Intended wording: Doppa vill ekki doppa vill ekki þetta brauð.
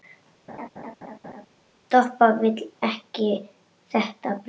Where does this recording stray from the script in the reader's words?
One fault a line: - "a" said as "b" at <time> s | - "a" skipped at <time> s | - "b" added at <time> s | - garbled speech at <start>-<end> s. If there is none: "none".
- "doppa vill ekki" skipped at 3.3 s